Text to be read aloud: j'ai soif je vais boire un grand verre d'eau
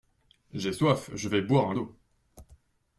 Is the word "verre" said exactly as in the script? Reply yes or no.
no